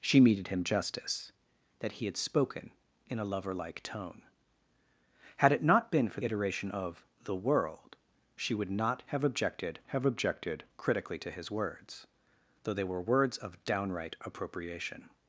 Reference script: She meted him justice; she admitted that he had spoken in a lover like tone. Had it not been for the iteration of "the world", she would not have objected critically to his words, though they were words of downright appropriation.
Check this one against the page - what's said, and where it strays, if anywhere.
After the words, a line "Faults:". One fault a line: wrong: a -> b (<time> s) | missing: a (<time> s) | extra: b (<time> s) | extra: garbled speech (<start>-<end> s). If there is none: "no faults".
She meted him justice; that he had spoken in a lover like tone. Had it not been for iteration of "the world", she would not have objected have objected critically to his words, though they were words of downright appropriation.
Faults:
missing: she admitted (1.3 s)
missing: the (6.2 s)
extra: have objected (9.9 s)